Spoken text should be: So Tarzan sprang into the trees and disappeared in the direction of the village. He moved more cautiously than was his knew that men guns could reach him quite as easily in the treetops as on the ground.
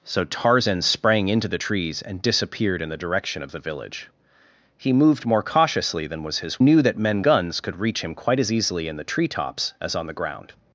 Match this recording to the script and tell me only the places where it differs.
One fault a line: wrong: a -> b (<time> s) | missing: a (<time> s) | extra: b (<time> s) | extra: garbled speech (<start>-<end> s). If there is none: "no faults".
no faults